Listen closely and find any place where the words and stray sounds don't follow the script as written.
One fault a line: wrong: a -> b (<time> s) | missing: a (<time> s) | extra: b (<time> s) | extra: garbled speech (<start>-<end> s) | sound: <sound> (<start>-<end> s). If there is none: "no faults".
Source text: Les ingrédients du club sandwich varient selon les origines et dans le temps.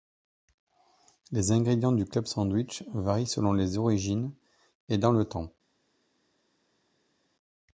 no faults